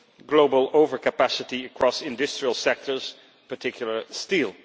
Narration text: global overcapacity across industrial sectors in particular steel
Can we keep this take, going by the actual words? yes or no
no